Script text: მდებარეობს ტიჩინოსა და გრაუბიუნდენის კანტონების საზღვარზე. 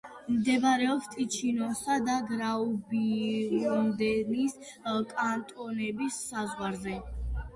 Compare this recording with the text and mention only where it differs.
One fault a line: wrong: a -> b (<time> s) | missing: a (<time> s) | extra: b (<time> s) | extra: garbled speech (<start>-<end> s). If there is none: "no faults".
no faults